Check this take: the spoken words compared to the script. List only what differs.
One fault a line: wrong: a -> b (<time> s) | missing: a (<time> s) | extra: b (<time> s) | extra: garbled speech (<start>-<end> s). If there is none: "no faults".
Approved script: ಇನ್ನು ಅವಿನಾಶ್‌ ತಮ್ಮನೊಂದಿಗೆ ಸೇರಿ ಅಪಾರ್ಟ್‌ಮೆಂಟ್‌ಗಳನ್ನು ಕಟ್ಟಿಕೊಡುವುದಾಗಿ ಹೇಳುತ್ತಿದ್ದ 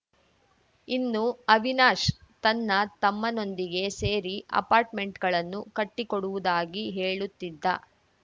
extra: ತನ್ನ (2.4 s)